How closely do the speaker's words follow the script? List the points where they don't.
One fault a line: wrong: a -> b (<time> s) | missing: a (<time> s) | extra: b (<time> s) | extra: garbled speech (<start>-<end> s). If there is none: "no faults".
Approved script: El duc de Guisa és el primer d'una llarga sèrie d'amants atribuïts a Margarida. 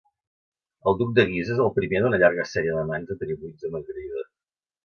no faults